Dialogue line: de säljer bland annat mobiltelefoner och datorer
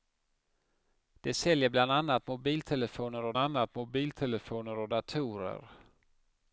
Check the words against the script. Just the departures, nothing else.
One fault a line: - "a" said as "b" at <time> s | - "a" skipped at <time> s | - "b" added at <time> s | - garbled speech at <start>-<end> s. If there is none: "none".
- "annat mobiltelefoner och" added at 3.4 s